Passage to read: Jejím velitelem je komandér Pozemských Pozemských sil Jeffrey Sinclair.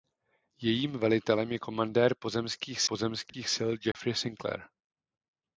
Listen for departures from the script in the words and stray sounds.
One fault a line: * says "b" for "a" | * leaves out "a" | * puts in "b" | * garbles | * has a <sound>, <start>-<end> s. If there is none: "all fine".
* has a dropout, 3.3-3.3 s
* has a dropout, 3.9-3.9 s